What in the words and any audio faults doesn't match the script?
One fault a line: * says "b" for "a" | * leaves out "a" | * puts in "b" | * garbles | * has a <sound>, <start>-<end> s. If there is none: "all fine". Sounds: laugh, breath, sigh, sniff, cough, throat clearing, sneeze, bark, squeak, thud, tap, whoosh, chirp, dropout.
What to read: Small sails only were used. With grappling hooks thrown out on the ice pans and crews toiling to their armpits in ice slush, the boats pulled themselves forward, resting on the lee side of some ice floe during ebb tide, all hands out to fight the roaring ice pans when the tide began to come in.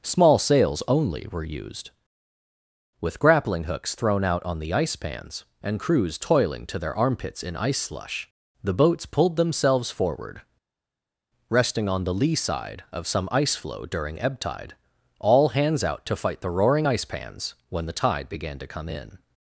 all fine